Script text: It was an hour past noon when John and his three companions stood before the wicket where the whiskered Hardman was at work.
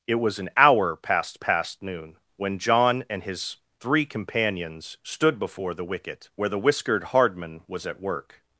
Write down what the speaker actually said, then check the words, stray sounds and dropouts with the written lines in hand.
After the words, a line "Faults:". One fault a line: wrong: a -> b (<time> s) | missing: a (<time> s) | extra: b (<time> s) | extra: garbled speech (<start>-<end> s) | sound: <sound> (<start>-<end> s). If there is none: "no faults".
It was an hour past past noon when John and his three companions stood before the wicket where the whiskered Hardman was at work.
Faults:
extra: past (1.4 s)